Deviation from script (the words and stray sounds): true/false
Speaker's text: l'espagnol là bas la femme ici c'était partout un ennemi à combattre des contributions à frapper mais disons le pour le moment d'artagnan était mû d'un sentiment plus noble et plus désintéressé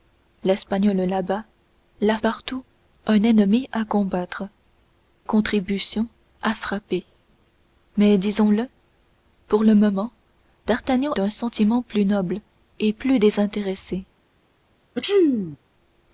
true